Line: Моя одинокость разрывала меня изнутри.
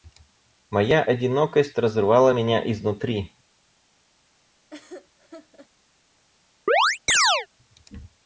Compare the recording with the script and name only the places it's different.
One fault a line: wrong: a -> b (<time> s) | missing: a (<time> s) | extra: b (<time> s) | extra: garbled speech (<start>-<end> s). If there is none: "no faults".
no faults